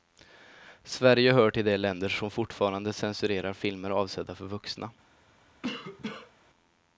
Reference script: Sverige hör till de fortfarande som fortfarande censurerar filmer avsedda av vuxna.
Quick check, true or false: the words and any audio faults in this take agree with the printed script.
false